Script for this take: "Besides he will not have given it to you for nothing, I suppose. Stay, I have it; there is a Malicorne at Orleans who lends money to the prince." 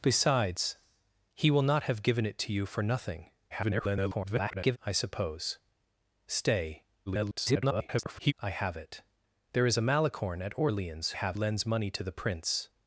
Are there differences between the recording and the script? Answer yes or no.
yes